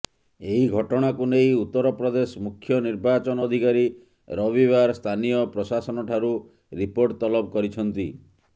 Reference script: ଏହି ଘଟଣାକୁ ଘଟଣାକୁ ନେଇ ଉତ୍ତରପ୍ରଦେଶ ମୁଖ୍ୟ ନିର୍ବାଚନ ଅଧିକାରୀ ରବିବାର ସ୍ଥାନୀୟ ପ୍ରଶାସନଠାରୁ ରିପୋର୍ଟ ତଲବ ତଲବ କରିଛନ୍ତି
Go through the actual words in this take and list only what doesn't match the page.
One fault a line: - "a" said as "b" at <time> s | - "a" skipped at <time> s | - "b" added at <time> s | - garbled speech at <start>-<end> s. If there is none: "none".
- "ଘଟଣାକୁ" skipped at 1.2 s
- "ତଲବ" skipped at 7.6 s